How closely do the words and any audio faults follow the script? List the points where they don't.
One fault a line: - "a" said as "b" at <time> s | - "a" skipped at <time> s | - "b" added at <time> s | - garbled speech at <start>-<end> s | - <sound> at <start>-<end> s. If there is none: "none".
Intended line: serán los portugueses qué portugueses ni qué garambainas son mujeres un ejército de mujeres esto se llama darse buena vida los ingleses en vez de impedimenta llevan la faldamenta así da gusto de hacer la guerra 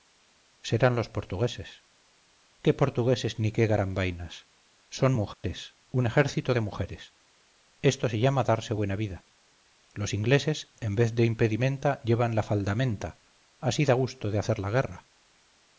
- dropout at 5.3-5.4 s